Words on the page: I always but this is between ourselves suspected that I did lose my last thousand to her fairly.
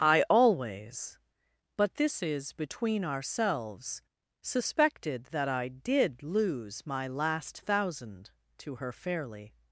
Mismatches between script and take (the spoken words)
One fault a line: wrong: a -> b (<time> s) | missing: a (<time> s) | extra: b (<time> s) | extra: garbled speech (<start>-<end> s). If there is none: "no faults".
no faults